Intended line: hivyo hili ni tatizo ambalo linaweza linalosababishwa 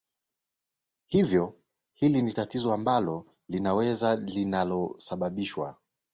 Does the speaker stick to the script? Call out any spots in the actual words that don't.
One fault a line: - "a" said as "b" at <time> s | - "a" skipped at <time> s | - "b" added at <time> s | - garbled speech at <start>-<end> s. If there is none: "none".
none